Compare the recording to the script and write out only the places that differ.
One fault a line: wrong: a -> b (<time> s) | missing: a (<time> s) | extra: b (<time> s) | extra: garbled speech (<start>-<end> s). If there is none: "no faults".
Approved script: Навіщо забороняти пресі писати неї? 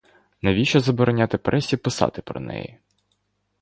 extra: про (2.2 s)